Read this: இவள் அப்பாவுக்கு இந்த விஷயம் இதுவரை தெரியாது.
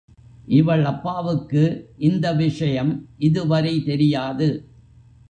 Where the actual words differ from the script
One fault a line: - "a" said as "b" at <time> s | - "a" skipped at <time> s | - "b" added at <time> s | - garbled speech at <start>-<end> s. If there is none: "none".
none